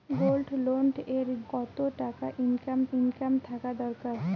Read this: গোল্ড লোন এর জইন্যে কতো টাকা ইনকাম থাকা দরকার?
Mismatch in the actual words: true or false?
true